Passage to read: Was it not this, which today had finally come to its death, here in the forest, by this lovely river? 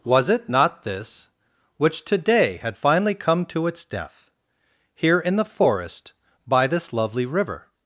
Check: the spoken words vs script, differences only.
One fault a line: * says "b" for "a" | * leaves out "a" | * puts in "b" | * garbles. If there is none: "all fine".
all fine